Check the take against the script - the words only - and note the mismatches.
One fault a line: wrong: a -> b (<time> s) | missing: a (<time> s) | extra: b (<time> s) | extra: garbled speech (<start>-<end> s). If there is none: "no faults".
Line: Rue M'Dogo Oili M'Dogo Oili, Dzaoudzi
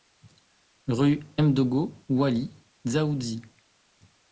missing: M'Dogo Oili (2.5 s)